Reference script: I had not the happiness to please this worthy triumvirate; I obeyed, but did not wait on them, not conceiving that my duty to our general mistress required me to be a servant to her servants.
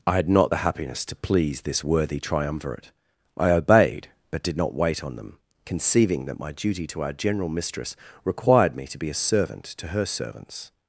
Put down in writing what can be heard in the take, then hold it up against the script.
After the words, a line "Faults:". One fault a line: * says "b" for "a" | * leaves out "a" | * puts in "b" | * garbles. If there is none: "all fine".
I had not the happiness to please this worthy triumvirate; I obeyed, but did not wait on them, conceiving that my duty to our general mistress required me to be a servant to her servants.
Faults:
* leaves out "not"